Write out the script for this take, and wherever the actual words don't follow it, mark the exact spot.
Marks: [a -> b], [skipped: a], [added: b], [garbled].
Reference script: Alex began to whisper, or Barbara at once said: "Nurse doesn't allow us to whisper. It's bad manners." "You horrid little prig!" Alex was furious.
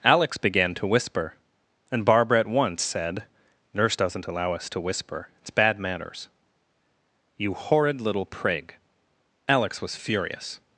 Alex began to whisper, [or -> and] Barbara at once said: "Nurse doesn't allow us to whisper. It's bad manners." "You horrid little prig!" Alex was furious.